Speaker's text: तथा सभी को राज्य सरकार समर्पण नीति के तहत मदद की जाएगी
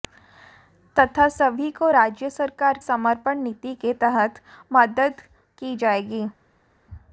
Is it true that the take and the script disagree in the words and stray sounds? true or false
false